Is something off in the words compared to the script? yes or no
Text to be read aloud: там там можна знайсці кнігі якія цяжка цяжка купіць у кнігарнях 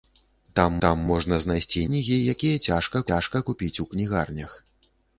no